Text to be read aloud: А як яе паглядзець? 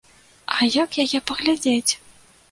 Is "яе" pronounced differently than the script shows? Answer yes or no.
no